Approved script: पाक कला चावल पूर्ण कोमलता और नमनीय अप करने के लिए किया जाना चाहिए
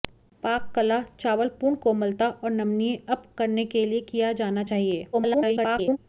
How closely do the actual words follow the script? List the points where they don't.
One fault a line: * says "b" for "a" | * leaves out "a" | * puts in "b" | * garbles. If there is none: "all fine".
* garbles